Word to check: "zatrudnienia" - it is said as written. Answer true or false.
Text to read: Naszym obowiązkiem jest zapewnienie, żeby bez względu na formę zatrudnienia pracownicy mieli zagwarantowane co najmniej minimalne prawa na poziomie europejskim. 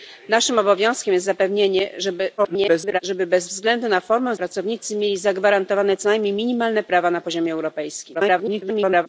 false